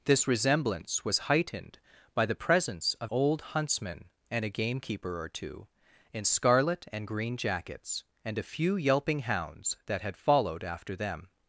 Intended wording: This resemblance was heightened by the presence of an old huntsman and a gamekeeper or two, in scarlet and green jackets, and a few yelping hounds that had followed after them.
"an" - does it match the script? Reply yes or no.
no